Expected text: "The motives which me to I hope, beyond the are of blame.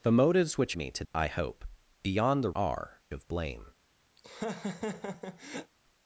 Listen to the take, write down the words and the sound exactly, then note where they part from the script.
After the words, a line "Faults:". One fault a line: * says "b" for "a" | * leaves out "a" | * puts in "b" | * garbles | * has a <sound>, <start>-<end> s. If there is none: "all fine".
"The motives which me to I hope, beyond the are of blame.
Faults:
* has a laugh, 4.2-5.7 s